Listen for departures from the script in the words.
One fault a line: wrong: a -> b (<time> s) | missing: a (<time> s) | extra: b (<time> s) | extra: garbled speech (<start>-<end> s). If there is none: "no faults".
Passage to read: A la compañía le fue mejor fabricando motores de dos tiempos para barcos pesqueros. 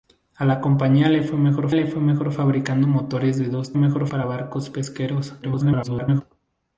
extra: le fue mejor (1.7 s)
wrong: tiempos -> mejor (3.7 s)
extra: garbled speech (5.4-6.2 s)